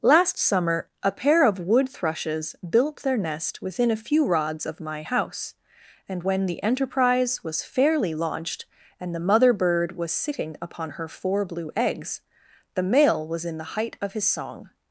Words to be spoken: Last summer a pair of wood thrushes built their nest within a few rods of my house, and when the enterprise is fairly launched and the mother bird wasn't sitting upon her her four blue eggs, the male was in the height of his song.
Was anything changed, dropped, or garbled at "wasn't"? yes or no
yes